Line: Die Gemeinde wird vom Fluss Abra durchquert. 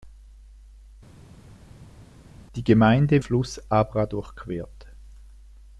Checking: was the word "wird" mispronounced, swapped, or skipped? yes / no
yes